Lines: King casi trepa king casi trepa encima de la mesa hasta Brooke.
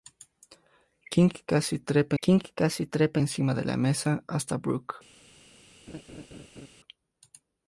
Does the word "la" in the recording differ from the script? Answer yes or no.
no